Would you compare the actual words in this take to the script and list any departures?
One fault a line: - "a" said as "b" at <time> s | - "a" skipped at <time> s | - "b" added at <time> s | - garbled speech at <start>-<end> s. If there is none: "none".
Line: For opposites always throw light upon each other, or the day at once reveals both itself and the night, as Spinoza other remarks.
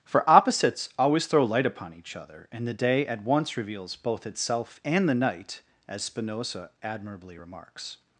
- "or" said as "and" at 2.5 s
- "other" said as "admirably" at 6.8 s